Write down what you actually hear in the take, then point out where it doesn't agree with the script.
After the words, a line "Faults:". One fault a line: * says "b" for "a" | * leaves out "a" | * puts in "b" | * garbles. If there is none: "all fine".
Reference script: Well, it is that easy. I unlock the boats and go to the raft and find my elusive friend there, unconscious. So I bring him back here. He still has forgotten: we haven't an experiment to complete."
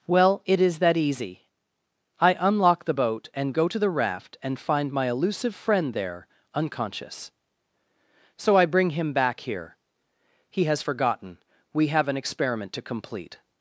Well, it is that easy. I unlock the boat and go to the raft and find my elusive friend there, unconscious. So I bring him back here. He has forgotten: we have an experiment to complete."
Faults:
* says "boat" for "boats"
* leaves out "still"
* says "have" for "haven't"